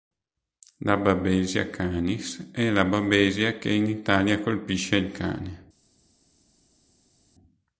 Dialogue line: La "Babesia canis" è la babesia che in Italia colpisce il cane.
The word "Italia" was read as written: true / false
true